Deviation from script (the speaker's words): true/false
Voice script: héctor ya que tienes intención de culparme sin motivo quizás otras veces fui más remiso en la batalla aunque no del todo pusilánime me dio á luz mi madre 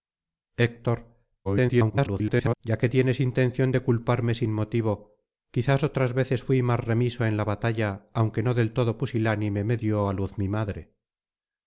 true